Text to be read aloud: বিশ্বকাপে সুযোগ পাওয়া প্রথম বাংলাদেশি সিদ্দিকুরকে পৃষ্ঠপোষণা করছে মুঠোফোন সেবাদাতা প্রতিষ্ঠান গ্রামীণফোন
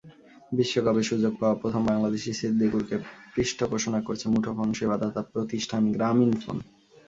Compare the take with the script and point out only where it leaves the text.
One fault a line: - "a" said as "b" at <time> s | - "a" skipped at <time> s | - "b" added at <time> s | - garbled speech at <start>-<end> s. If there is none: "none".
none